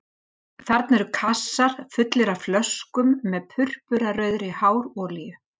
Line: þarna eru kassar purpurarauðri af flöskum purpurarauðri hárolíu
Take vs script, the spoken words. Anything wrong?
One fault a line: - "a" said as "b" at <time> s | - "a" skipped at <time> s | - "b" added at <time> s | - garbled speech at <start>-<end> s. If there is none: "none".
- "purpurarauðri" said as "fullir" at 2.0 s
- "með" added at 3.4 s